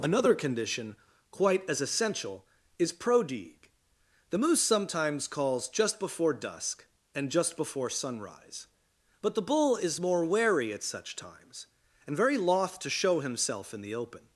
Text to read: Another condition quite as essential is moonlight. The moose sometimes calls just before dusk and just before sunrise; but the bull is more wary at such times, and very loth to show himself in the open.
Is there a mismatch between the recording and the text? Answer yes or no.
yes